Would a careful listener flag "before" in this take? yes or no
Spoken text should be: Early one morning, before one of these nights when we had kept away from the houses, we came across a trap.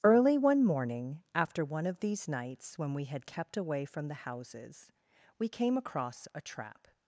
yes